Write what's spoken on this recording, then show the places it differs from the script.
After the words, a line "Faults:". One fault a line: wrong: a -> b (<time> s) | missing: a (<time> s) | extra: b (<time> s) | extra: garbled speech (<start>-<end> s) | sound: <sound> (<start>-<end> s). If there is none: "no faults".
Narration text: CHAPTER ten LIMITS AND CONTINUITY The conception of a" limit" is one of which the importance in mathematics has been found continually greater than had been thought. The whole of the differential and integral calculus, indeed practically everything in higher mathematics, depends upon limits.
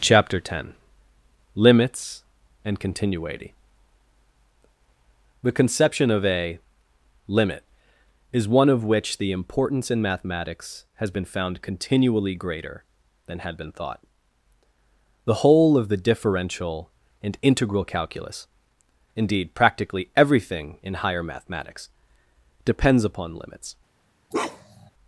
CHAPTER ten LIMITS AND CONTINUITY The conception of a" limit" is one of which the importance in mathematics has been found continually greater than had been thought. The whole of the differential and integral calculus, indeed practically everything in higher mathematics, depends upon limits.
Faults:
sound: bark (24.3-24.9 s)